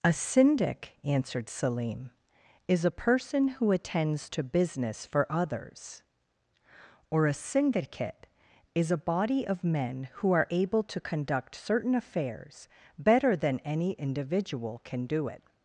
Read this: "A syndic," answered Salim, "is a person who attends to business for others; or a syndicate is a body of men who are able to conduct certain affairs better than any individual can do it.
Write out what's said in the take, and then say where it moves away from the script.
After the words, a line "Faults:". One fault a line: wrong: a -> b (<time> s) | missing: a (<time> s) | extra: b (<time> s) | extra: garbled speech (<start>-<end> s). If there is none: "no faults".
"A syndic," answered Salim, "is a person who attends to business for others; or a syndicate is a body of men who are able to conduct certain affairs better than any individual can do it.
Faults:
no faults